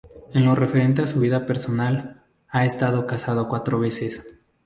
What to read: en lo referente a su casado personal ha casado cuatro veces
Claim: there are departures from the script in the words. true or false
true